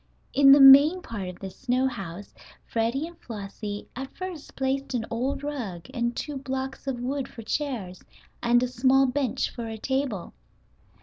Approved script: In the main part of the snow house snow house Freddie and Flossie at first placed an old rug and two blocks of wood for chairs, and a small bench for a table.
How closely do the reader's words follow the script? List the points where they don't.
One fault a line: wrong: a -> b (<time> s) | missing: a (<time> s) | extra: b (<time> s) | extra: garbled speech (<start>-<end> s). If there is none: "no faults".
missing: snow house (2.3 s)